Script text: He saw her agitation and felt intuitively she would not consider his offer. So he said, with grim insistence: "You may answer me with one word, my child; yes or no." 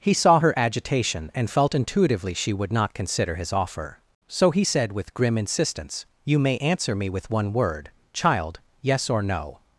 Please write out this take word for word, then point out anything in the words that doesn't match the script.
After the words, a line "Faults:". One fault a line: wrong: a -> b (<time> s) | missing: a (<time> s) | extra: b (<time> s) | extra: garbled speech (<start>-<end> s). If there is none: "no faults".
He saw her agitation and felt intuitively she would not consider his offer. So he said, with grim insistence: "You may answer me with one word, child; yes or no."
Faults:
missing: my (7.9 s)